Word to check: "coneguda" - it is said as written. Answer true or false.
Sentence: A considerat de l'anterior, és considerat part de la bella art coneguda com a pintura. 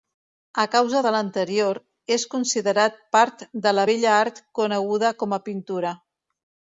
true